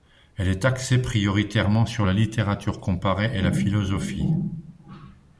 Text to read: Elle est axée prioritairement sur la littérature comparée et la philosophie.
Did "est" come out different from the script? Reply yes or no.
no